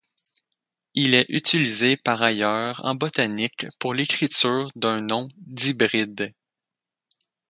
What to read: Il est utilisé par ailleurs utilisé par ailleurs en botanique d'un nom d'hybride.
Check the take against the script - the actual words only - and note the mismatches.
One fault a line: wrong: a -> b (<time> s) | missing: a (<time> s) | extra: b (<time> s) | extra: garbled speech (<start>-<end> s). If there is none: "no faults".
wrong: utilisé par ailleurs en botanique -> en botanique pour l'écriture (2.9 s)